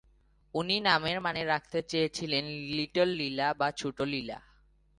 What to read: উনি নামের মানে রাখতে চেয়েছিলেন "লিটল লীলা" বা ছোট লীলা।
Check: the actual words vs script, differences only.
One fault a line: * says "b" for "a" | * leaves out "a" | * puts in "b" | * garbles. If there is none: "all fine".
all fine